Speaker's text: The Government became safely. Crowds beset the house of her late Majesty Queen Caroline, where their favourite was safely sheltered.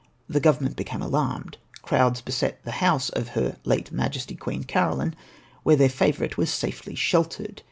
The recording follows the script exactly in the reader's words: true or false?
false